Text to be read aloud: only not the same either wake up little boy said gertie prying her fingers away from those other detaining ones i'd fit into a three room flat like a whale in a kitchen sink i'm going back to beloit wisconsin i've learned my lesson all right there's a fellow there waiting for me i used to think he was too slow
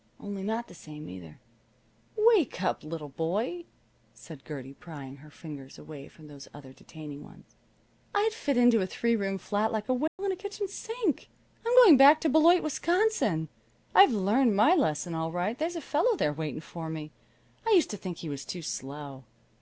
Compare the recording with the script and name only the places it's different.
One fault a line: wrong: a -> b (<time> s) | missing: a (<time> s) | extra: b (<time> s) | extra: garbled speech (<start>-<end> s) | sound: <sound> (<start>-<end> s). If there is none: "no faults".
sound: dropout (10.1-10.2 s)